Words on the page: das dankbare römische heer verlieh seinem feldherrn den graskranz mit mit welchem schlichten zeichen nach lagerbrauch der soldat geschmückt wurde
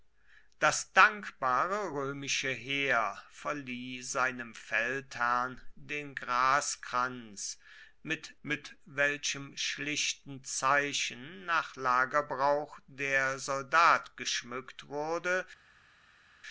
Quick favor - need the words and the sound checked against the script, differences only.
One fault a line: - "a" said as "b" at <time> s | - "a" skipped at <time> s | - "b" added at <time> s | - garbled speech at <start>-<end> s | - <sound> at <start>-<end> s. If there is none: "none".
none